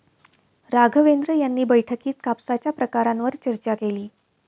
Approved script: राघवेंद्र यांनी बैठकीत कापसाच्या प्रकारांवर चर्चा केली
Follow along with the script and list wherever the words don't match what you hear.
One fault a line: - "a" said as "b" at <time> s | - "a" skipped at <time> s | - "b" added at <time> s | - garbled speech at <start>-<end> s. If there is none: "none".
none